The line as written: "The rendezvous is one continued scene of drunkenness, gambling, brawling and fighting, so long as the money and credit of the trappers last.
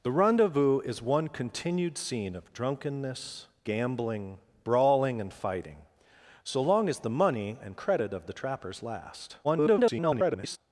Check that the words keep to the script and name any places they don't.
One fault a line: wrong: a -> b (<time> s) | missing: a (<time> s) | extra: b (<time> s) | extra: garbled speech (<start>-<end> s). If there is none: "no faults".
extra: garbled speech (9.4-10.6 s)